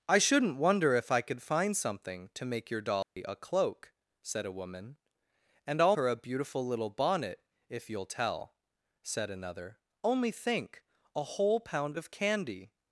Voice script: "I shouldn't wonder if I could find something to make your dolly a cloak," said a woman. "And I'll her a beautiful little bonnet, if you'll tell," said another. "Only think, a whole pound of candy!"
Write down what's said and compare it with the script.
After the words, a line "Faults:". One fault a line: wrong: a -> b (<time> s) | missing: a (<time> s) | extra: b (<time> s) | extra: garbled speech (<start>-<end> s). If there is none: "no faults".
"I shouldn't wonder if I could find something to make your dolly a cloak," said a woman. "And I'll her a beautiful little bonnet, if you'll tell," said another. "Only think, a whole pound of candy!"
Faults:
no faults